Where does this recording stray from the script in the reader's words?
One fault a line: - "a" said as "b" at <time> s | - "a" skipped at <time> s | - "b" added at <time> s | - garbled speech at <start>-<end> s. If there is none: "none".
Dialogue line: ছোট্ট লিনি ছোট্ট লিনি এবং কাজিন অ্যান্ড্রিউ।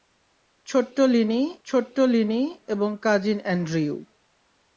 none